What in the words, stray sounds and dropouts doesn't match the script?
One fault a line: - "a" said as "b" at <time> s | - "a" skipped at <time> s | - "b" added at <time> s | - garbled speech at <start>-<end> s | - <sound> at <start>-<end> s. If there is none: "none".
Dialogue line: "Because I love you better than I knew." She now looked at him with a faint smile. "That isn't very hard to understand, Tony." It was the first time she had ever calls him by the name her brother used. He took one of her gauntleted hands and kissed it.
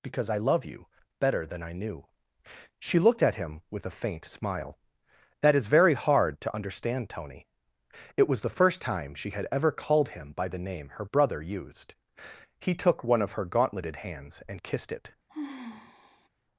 - "now" skipped at 3.0 s
- "isn't" said as "is" at 5.5 s
- "calls" said as "called" at 9.7 s
- sigh at 15.3-16.3 s